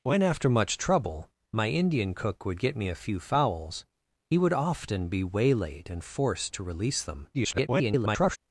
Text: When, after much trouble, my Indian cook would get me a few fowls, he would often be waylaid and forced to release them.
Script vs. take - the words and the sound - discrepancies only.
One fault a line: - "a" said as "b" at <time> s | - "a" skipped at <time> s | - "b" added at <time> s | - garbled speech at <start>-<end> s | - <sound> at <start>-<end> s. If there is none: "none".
- garbled speech at 7.3-8.4 s